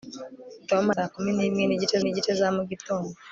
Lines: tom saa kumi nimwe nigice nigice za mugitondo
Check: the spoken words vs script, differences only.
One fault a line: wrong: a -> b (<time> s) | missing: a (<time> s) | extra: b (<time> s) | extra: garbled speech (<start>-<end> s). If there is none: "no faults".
no faults